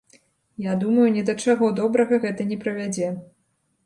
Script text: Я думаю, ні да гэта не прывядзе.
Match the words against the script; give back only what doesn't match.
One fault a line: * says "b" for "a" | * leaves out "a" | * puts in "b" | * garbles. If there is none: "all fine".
* puts in "чаго добрага"